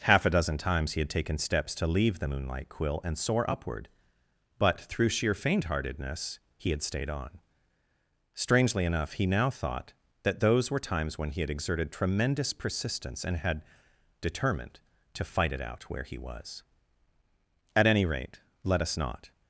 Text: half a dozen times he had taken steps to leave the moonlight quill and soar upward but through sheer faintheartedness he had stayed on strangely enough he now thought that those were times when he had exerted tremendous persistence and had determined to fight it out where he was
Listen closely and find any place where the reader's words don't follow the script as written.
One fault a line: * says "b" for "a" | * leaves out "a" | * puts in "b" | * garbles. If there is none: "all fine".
* puts in "at any rate let us not"